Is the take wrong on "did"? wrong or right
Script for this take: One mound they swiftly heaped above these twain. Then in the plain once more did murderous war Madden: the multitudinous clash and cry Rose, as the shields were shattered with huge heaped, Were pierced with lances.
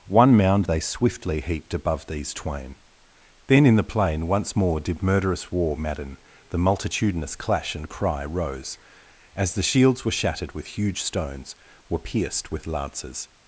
right